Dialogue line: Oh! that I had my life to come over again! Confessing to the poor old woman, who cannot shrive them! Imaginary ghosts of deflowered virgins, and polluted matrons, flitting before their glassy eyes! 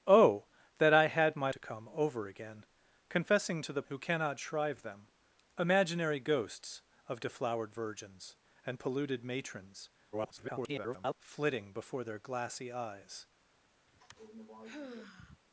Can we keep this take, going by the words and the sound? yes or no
no